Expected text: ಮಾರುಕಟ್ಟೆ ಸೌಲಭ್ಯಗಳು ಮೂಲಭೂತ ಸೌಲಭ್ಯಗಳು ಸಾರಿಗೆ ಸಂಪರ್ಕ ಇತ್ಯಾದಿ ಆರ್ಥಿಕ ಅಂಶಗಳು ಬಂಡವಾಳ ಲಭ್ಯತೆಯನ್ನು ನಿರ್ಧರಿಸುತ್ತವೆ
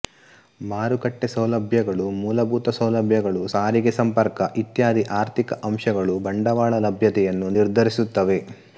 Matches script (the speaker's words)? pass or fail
pass